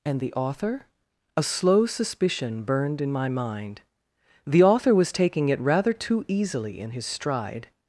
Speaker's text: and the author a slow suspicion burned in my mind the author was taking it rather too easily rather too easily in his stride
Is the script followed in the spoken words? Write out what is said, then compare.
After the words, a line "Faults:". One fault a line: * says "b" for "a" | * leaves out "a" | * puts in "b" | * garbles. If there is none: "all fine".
and the author a slow suspicion burned in my mind the author was taking it rather too easily in his stride
Faults:
* leaves out "rather too easily"